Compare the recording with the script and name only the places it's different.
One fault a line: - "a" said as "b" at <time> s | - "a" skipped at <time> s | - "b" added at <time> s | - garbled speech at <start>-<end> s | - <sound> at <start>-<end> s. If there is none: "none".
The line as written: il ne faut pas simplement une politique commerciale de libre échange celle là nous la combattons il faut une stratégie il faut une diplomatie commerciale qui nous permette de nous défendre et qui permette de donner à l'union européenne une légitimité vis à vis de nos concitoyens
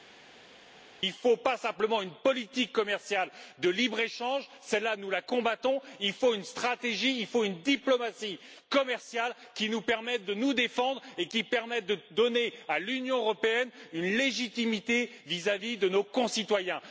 none